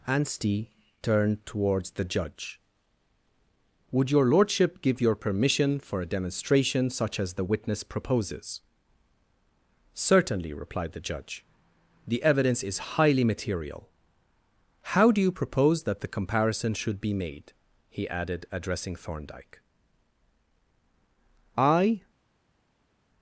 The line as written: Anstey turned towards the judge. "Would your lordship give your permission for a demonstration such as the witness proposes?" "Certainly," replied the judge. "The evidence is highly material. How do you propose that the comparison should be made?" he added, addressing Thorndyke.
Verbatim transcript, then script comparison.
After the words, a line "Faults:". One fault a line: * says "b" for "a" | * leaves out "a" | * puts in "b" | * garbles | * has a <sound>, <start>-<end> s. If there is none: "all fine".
Anstey turned towards the judge. "Would your lordship give your permission for a demonstration such as the witness proposes?" "Certainly," replied the judge. "The evidence is highly material. How do you propose that the comparison should be made?" he added, addressing Thorndyke. "I
Faults:
* puts in "I"